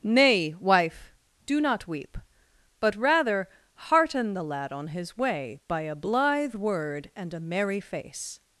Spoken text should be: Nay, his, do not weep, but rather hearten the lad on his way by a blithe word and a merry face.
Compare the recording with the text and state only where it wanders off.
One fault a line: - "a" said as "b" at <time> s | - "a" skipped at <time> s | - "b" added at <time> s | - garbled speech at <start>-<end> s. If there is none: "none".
- "his" said as "wife" at 0.6 s